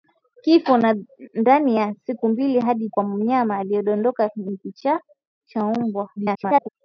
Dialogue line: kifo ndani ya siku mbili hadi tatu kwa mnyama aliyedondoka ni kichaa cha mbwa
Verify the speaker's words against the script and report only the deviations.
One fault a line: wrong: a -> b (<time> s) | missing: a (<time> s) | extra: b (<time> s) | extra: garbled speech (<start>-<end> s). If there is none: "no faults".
missing: tatu (2.9 s)
extra: garbled speech (6.2-6.7 s)